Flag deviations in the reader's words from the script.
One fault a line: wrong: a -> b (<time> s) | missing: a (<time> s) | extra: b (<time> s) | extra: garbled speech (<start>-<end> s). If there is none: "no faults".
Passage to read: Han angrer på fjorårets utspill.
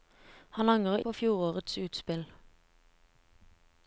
no faults